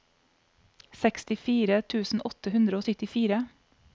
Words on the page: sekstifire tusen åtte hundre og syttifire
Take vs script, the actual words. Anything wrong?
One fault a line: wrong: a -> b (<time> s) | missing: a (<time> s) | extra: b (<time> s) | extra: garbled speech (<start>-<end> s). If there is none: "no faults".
no faults